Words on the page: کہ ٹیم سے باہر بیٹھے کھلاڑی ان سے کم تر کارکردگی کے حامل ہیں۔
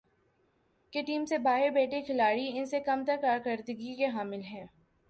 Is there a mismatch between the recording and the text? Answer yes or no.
no